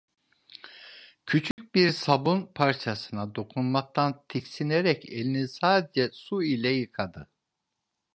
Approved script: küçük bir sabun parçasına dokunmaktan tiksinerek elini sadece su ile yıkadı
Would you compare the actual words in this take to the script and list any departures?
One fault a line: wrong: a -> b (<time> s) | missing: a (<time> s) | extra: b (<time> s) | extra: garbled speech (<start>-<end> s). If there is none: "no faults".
no faults